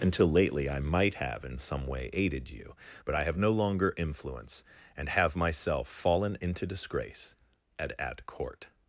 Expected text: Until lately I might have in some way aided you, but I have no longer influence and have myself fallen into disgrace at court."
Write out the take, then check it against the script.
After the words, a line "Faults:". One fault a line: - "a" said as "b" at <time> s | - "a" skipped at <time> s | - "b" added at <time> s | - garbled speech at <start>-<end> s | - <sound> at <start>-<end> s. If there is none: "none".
Until lately I might have in some way aided you, but I have no longer influence and have myself fallen into disgrace at at court."
Faults:
- "at" added at 8.0 s